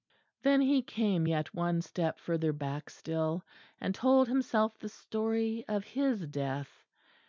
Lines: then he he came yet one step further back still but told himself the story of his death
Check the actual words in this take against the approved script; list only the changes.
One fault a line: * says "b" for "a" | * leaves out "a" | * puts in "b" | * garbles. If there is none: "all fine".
* leaves out "he"
* says "and" for "but"